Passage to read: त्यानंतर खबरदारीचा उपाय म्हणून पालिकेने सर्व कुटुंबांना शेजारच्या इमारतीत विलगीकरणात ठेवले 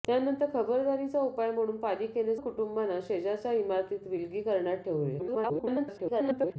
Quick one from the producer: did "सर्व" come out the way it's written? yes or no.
no